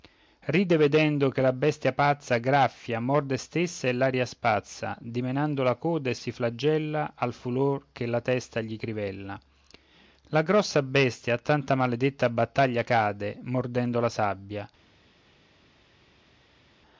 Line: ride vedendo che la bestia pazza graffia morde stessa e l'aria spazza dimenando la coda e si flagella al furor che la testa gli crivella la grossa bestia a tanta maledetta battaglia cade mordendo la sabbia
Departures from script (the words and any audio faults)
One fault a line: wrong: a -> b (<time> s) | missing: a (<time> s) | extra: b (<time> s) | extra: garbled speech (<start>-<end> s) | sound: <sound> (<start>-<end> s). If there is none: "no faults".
no faults